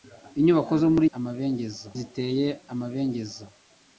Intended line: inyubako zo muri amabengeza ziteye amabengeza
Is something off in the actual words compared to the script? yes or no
no